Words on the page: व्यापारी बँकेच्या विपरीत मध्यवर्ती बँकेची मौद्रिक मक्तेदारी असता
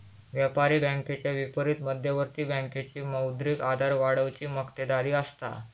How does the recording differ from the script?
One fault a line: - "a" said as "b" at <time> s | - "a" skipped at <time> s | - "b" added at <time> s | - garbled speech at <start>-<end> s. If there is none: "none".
- "आधार वाढवुची" added at 3.6 s